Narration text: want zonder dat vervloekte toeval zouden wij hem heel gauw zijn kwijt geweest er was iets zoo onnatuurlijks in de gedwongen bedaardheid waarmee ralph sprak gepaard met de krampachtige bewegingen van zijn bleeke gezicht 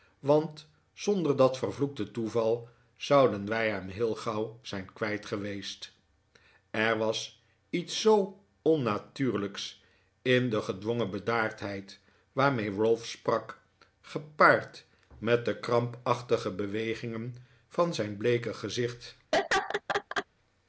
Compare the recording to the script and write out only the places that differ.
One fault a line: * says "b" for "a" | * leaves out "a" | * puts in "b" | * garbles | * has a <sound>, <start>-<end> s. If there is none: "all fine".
* has a laugh, 19.3-20.3 s